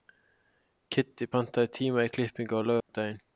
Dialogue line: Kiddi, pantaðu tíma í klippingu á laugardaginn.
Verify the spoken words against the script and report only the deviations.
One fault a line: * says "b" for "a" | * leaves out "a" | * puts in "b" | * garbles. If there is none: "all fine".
all fine